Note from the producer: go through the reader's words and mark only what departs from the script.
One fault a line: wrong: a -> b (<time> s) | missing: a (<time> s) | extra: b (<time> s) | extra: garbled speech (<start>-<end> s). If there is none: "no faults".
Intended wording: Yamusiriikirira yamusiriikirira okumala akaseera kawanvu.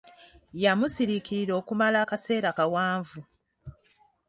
missing: yamusiriikirira (1.5 s)